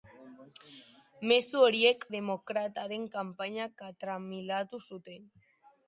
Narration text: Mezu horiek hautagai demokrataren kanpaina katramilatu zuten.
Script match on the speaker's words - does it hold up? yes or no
no